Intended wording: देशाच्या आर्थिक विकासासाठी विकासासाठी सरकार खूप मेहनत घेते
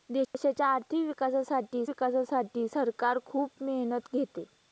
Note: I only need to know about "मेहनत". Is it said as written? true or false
true